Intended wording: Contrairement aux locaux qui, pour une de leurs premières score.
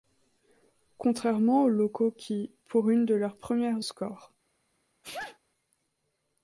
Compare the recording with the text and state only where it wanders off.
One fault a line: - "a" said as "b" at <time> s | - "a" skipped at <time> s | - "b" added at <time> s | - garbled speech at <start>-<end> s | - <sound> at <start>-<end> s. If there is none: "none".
- sneeze at 5.0-5.4 s